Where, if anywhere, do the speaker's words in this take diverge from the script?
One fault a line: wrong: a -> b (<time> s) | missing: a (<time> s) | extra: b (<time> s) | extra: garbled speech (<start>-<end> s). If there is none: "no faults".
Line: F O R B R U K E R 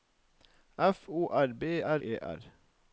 missing: U K (2.0 s)